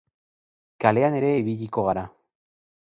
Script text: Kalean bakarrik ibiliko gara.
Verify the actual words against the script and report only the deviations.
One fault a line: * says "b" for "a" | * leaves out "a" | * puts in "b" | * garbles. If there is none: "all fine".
* says "ere" for "bakarrik"